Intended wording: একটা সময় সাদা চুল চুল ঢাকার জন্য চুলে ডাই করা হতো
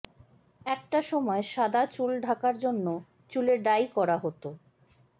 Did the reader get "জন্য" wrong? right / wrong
right